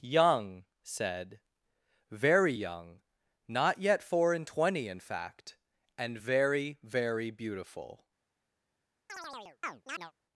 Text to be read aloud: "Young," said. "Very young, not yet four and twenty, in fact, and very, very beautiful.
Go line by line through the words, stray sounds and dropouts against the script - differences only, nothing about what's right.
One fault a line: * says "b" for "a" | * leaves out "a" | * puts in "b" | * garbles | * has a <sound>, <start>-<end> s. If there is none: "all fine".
* has a chirp, 9.1-10.1 s